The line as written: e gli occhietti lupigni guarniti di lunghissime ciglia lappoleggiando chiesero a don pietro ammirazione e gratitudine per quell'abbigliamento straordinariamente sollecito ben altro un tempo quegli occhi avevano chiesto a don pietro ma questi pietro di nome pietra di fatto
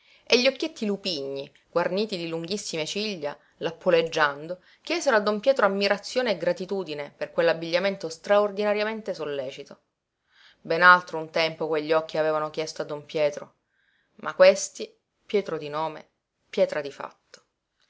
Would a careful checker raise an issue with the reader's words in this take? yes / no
no